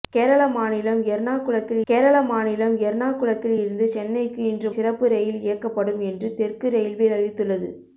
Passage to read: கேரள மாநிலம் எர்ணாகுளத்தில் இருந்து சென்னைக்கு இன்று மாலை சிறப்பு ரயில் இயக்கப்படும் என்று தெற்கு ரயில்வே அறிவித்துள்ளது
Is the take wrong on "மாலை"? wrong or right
wrong